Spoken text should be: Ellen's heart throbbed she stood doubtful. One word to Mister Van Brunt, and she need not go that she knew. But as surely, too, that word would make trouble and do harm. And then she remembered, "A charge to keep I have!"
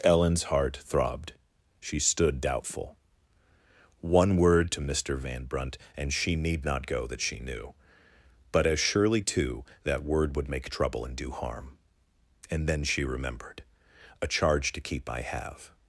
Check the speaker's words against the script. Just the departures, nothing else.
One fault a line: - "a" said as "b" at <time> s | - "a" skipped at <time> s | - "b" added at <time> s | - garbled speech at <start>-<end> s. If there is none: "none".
none